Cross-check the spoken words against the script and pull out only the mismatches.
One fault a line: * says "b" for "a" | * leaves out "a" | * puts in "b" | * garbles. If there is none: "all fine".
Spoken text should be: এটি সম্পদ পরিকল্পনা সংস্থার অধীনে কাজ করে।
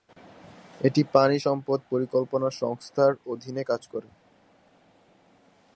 * puts in "পানি"